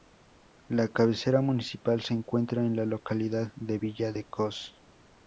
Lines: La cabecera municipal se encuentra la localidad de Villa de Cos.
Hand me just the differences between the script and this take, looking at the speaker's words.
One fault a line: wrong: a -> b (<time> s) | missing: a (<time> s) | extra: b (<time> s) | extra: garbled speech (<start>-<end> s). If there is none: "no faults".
extra: en (2.6 s)